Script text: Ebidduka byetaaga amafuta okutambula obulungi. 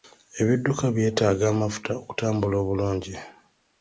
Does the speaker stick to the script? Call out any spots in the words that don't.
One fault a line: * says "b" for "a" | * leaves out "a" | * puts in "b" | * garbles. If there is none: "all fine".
all fine